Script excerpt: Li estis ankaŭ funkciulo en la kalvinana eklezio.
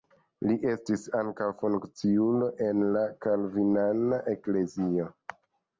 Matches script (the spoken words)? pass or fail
pass